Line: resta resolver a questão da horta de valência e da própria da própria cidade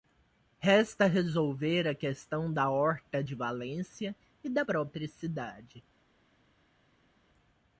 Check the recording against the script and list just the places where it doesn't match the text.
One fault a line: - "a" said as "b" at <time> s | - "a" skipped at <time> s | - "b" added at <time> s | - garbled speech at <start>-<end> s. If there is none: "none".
- "da própria" skipped at 5.1 s